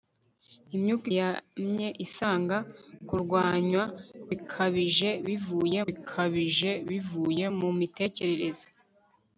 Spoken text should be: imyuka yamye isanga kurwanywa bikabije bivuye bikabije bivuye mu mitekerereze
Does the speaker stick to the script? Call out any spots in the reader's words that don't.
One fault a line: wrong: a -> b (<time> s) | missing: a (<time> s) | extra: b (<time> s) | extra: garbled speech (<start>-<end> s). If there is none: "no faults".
no faults